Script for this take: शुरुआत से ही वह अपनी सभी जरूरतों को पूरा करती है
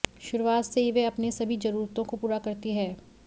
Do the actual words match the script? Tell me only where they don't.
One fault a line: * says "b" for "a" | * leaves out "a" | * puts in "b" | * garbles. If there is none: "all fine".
all fine